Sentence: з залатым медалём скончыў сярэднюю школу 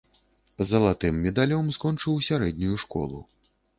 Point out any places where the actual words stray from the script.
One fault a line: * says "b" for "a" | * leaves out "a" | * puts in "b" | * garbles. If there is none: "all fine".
all fine